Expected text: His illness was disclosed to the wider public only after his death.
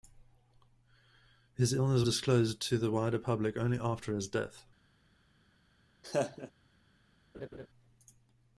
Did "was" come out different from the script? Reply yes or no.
yes